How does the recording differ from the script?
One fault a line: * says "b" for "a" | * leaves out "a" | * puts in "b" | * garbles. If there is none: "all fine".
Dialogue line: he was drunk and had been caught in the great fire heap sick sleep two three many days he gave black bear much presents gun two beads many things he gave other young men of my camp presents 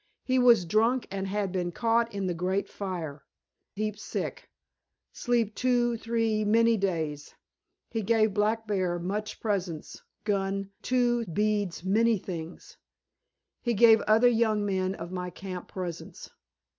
all fine